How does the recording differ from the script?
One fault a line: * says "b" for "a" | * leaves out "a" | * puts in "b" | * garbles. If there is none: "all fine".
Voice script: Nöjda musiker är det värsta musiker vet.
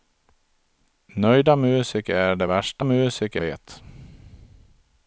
all fine